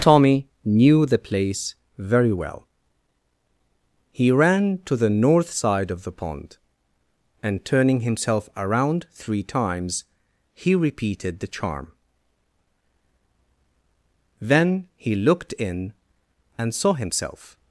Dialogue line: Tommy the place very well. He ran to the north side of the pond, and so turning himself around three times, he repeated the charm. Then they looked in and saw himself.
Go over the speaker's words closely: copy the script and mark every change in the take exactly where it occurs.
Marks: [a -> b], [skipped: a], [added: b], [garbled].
Tommy [added: knew] the place very well. He ran to the north side of the pond, and [skipped: so] turning himself around three times, he repeated the charm. Then [they -> he] looked in and saw himself.